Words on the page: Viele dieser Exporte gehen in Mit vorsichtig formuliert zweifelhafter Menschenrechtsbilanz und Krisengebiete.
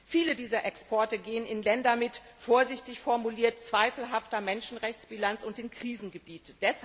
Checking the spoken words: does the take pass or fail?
fail